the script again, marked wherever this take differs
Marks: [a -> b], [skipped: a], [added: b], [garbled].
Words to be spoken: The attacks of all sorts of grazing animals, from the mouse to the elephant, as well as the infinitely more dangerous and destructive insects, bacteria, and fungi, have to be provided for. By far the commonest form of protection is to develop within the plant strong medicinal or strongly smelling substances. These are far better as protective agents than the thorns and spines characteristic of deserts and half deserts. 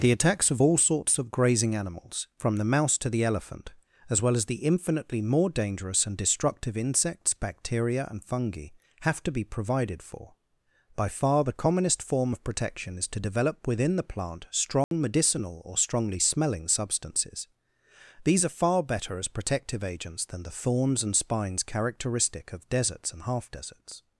The attacks of all sorts of grazing animals, from the mouse to the elephant, as well as the infinitely more dangerous and destructive insects, bacteria, and fungi, have to be provided for. By far the commonest form of protection is to develop within the plant strong medicinal or strongly smelling substances. These are far better as protective agents than the thorns and spines characteristic of deserts and half deserts.